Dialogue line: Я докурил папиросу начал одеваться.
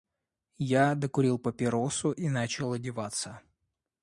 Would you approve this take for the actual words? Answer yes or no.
no